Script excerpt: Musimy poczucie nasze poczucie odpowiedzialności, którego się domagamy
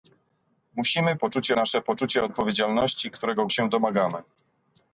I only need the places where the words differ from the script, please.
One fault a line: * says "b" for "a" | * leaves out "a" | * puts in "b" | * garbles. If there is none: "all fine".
all fine